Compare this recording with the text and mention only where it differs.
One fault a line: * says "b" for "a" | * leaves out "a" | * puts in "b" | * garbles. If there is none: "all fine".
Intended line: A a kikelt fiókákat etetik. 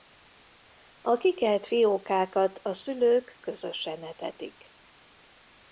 * puts in "kikelt fiókákat"
* says "szülők közösen" for "kikelt fiókákat"